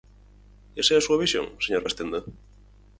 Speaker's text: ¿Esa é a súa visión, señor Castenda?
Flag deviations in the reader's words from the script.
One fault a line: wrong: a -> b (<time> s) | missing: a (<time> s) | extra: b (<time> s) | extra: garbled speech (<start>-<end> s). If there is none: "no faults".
no faults